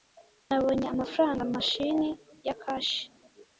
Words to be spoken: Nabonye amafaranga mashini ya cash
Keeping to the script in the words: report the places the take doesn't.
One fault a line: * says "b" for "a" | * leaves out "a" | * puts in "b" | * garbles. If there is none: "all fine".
all fine